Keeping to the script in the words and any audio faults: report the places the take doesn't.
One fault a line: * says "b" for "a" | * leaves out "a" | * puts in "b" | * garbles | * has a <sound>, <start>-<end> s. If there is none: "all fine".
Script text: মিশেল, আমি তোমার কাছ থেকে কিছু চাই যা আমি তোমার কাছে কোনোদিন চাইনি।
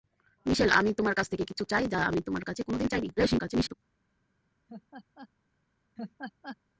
* garbles
* has a laugh, 4.7-5.3 s
* has a laugh, 6.0-6.6 s